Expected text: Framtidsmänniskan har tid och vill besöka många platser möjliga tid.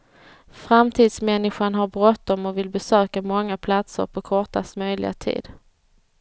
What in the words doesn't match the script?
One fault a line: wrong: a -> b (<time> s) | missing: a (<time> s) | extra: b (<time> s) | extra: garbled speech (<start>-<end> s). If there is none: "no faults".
wrong: tid -> bråttom (1.9 s)
extra: på kortast (4.0 s)